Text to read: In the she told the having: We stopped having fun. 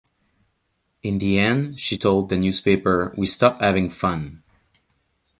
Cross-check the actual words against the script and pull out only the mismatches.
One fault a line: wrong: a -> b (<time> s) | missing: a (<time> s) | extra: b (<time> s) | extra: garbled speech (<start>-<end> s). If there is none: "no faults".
extra: end (1.4 s)
wrong: having -> newspaper (2.4 s)